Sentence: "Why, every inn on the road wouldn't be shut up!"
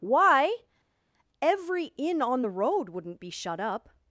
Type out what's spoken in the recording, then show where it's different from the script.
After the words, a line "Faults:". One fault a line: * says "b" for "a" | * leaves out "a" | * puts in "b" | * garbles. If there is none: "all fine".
"Why, every inn on the road wouldn't be shut up!"
Faults:
all fine